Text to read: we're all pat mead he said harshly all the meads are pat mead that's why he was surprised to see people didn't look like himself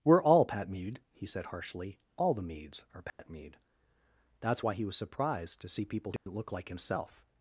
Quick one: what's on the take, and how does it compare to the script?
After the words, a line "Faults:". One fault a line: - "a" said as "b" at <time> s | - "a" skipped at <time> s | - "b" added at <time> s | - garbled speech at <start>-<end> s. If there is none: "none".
we're all pat mead he said harshly all the meads are pat mead that's why he was surprised to see people didn't look like himself
Faults:
none